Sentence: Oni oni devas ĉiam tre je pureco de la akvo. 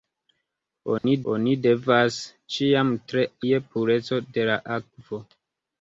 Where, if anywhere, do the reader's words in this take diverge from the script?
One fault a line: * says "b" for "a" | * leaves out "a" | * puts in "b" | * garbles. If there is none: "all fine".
all fine